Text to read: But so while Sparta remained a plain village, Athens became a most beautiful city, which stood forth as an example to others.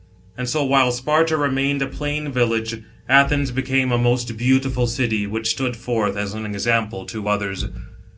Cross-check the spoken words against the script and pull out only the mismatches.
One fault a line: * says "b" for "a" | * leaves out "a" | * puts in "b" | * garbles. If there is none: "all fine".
* says "And" for "But"